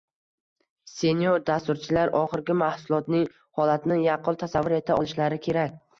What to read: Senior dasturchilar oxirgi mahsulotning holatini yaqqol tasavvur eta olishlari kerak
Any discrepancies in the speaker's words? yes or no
no